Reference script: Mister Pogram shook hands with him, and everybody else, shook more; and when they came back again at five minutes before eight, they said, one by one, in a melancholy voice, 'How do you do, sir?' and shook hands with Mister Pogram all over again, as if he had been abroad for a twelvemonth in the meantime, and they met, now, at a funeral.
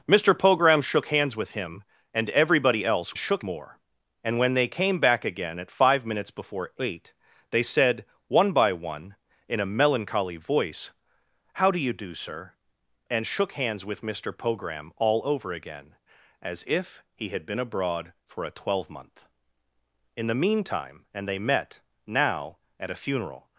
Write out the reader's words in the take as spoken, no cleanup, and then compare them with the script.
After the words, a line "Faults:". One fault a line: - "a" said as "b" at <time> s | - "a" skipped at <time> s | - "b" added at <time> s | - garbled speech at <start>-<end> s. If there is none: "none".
Mister Pogram shook hands with him, and everybody else, shook more; and when they came back again at five minutes before eight, they said, one by one, in a melancholy voice, 'How do you do, sir?' and shook hands with Mister Pogram all over again, as if he had been abroad for a twelvemonth in the meantime, and they met, now, at a funeral.
Faults:
none